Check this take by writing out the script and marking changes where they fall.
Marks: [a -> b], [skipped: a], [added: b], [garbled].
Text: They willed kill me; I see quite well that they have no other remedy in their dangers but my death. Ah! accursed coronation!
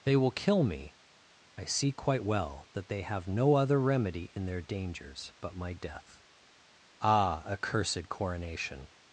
They [willed -> will] kill me; I see quite well that they have no other remedy in their dangers but my death. Ah! accursed coronation!